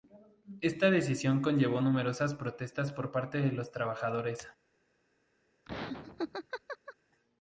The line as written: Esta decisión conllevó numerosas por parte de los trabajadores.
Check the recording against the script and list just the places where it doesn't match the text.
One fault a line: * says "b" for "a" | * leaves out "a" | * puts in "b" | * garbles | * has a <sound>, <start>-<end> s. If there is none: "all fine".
* puts in "protestas"
* has a laugh, 5.7-7.0 s